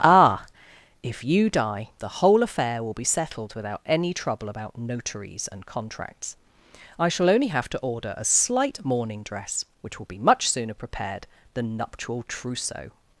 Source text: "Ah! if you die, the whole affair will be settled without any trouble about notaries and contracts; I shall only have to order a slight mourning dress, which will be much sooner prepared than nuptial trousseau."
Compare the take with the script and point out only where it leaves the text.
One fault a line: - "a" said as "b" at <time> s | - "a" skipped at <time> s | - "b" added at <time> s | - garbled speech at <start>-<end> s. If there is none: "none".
none